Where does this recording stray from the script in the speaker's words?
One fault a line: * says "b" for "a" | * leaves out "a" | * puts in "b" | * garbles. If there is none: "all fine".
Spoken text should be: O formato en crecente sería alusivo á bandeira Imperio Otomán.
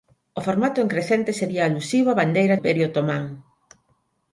all fine